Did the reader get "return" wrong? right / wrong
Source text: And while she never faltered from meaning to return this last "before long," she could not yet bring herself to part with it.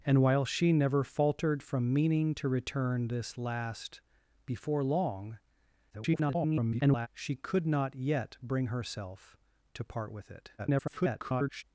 right